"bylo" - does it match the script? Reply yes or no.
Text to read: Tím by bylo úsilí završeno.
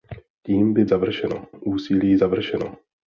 no